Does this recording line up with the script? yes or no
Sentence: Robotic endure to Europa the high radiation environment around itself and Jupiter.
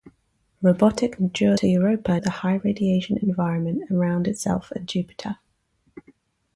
yes